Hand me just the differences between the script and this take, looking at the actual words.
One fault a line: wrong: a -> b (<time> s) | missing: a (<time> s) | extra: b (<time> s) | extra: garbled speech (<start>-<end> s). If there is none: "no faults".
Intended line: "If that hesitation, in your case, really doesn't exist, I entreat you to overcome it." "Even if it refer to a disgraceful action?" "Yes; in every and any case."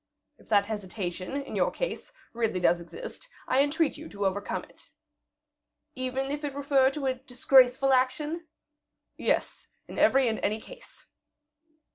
wrong: doesn't -> does (2.6 s)